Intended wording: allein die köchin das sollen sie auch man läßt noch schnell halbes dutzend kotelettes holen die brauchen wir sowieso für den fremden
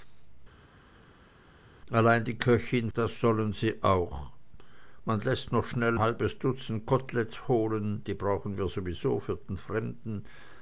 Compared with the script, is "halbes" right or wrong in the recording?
right